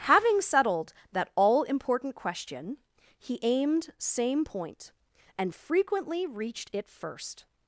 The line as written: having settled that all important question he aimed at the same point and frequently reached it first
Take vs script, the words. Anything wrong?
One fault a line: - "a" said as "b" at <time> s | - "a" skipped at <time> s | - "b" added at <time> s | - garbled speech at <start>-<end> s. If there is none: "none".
- "at the" skipped at 3.9 s